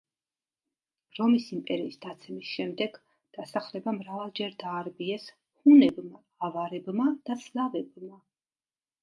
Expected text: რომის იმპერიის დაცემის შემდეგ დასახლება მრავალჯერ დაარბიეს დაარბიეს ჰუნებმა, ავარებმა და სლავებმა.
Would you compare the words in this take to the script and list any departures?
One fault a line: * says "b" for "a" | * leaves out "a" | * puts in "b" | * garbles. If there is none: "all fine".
* leaves out "დაარბიეს"